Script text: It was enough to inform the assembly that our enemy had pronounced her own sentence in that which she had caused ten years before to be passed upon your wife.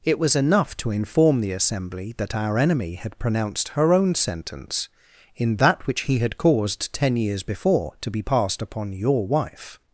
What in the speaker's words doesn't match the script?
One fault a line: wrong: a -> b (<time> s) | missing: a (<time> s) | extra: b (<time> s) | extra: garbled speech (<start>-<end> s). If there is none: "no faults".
wrong: she -> he (6.0 s)